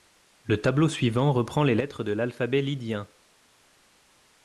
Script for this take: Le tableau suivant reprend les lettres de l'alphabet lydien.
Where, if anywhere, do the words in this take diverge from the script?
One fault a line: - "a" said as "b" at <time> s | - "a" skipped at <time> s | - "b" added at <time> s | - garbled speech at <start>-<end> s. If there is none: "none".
none